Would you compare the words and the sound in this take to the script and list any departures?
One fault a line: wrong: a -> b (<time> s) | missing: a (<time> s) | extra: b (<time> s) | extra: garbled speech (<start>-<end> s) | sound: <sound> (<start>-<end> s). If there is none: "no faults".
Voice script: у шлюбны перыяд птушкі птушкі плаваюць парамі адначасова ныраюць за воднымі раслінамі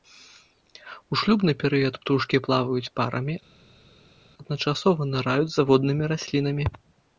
missing: птушкі (2.4 s)